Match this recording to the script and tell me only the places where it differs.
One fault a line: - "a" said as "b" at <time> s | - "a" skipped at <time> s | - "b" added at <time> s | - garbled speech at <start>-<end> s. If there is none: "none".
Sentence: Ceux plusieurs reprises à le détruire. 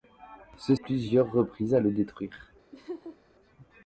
none